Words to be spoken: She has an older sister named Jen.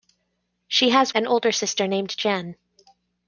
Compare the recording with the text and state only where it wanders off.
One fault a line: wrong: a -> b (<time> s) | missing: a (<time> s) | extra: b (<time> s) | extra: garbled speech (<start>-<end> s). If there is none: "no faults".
no faults